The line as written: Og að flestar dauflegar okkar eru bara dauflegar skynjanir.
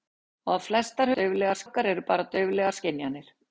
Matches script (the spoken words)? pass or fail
pass